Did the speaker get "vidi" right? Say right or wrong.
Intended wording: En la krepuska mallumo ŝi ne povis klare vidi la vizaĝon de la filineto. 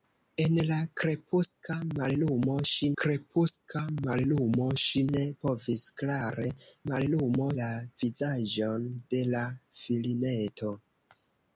wrong